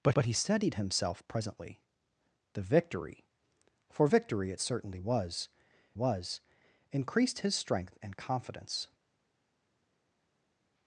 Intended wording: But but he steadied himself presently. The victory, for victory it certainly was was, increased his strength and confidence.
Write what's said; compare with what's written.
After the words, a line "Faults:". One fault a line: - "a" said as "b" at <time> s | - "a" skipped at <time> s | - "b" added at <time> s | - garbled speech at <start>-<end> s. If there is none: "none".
But but he steadied himself presently. The victory, for victory it certainly was was, increased his strength and confidence.
Faults:
none